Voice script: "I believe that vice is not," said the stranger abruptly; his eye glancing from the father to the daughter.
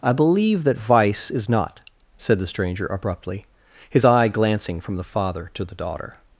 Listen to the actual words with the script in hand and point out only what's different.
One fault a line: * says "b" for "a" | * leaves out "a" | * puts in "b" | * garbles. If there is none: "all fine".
all fine